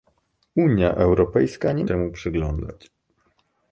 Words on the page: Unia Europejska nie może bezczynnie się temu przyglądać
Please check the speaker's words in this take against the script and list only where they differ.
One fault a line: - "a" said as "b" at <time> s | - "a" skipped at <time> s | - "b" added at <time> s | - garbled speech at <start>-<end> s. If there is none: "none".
- "może bezczynnie się" skipped at 1.8 s